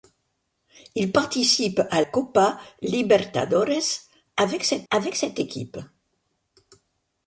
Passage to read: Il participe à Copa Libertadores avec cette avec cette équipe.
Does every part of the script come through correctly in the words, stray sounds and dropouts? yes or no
yes